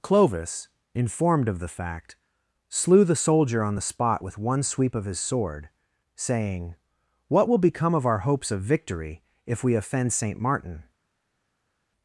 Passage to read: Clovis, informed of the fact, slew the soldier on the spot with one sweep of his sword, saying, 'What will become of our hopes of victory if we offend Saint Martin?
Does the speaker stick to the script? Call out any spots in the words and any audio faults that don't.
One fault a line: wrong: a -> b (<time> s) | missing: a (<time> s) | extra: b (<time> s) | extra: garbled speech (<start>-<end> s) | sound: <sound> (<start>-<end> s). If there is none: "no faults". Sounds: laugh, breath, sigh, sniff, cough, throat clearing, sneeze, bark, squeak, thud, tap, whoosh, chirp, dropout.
no faults